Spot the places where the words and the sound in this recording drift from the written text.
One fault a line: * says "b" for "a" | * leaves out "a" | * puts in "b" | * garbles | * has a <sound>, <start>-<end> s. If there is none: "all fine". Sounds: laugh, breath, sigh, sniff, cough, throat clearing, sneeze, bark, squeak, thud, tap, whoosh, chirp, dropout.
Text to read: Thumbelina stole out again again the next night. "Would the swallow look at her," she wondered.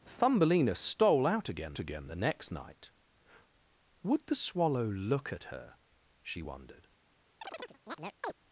* has a chirp, 7.4-8.3 s